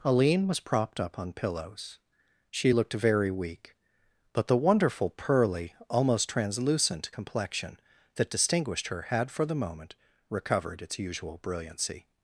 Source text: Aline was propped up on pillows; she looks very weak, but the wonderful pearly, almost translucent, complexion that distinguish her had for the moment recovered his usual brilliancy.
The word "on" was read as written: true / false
true